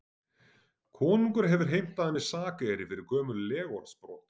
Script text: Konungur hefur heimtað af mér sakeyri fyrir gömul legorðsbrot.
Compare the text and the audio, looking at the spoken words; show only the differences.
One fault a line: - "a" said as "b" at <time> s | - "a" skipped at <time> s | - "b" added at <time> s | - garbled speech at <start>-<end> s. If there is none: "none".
none